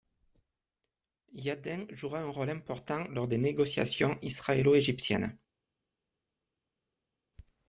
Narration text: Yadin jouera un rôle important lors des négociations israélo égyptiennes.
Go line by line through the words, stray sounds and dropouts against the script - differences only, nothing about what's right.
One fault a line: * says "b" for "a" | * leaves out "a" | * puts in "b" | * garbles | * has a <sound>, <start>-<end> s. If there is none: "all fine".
all fine